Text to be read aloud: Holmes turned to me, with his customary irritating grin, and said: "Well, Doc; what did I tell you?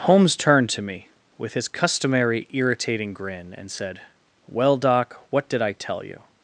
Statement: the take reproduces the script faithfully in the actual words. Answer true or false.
true